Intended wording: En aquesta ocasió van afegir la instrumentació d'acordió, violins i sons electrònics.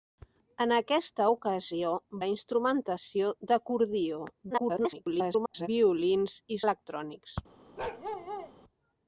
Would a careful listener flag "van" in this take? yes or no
yes